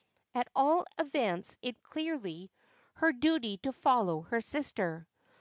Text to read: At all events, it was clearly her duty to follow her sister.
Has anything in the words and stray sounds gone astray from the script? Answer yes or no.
yes